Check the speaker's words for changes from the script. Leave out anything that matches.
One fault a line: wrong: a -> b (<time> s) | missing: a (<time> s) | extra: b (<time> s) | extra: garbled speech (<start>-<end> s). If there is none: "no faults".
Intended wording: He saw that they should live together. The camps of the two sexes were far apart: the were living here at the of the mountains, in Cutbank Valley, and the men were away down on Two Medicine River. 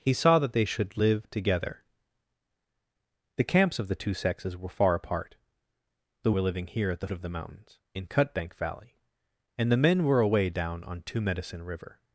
no faults